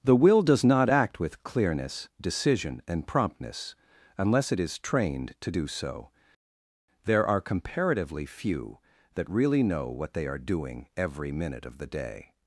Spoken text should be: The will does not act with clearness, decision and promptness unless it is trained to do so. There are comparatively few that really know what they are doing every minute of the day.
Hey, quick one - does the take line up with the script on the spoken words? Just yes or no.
yes